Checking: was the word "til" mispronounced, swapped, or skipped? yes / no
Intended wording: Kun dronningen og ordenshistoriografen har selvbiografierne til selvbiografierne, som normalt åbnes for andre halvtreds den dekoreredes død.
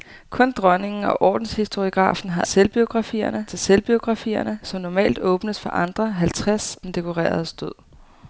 no